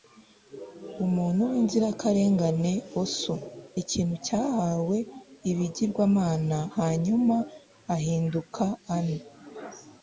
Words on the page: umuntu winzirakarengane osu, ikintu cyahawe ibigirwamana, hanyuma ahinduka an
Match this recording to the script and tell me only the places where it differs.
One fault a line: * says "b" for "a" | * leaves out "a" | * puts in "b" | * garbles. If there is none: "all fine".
all fine